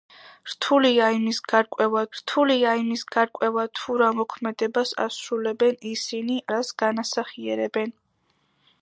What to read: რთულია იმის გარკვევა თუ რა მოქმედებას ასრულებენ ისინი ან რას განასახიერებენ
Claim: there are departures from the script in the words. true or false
true